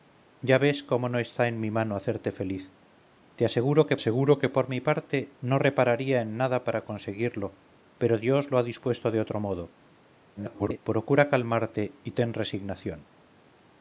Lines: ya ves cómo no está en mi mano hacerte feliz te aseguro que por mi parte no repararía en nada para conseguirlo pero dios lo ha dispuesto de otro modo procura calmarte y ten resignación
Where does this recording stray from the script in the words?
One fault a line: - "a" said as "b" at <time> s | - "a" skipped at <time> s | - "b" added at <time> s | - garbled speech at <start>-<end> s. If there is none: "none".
- "aseguro que" added at 3.9 s
- garbled speech at 10.4-10.8 s